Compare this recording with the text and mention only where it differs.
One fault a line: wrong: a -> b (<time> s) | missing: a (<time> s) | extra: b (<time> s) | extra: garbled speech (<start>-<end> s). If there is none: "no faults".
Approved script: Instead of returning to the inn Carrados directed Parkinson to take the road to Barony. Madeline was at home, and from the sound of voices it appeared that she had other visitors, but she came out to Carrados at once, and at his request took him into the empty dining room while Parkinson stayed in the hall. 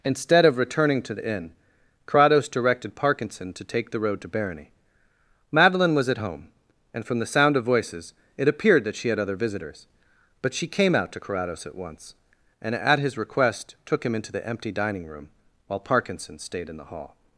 no faults